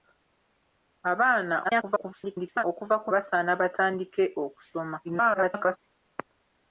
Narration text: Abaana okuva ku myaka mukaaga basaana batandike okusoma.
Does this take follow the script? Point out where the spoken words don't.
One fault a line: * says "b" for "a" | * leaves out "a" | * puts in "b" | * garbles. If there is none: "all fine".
* garbles
* leaves out "myaka mukaaga"
* garbles